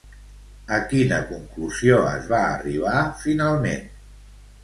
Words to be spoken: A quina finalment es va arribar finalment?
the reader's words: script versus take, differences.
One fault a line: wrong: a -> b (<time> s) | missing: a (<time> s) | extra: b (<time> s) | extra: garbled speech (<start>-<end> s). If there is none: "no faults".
wrong: finalment -> conclusió (1.3 s)